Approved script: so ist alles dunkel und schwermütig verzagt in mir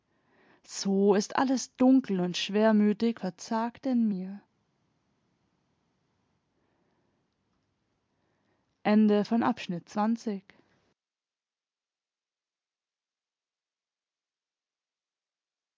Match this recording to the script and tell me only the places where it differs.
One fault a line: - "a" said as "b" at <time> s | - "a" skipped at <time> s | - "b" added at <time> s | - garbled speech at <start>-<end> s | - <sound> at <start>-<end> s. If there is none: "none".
none